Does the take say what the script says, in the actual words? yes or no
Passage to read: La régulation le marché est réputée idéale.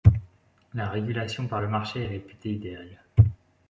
no